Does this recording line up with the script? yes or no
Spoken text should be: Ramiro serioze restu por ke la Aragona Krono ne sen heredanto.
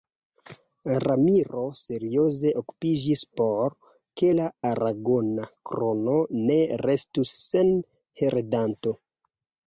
no